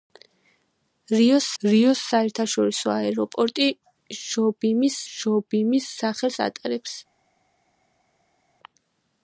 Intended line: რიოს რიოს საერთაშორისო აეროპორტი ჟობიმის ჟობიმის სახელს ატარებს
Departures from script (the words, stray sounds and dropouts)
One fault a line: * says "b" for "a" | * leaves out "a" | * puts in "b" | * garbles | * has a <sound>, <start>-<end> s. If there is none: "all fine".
all fine